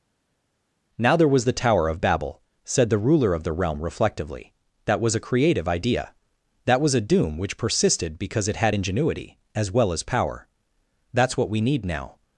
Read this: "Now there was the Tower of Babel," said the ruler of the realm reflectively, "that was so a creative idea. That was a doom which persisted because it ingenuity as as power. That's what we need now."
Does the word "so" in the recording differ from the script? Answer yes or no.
yes